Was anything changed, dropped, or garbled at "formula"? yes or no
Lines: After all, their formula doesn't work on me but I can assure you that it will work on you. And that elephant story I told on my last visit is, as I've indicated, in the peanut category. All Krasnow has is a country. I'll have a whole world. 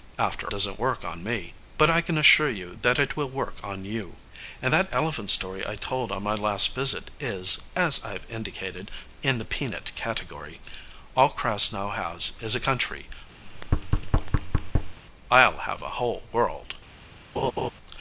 yes